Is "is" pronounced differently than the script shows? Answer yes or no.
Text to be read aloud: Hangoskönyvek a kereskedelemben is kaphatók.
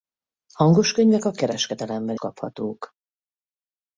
yes